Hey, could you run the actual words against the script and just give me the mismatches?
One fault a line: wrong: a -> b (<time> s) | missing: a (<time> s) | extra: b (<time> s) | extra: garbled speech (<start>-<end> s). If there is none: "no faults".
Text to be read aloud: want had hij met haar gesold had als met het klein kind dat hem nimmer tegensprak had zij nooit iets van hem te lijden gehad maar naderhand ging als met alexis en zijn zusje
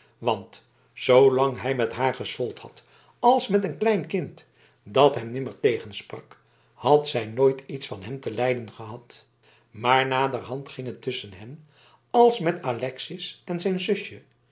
wrong: had -> zoolang (0.9 s)
wrong: het -> een (3.6 s)
extra: het tusschen hen (10.9 s)